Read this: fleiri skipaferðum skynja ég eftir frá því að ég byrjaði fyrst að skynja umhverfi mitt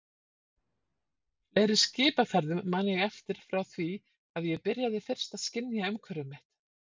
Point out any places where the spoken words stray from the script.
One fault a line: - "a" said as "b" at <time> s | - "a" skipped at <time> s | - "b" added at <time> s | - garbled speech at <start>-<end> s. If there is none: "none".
- "skynja" said as "man" at 2.8 s